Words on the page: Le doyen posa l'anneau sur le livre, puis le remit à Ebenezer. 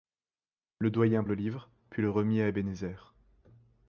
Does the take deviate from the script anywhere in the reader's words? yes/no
yes